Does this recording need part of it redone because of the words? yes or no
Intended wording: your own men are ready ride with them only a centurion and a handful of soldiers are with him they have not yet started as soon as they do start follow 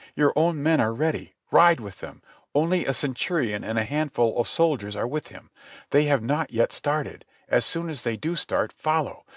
no